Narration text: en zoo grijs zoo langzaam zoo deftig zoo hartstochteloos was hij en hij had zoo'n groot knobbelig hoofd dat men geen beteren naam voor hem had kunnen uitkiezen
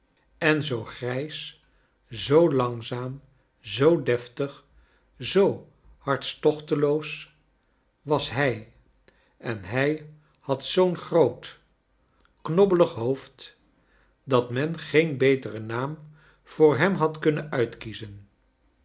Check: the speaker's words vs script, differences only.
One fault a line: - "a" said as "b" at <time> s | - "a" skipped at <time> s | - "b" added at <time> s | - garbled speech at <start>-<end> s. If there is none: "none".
none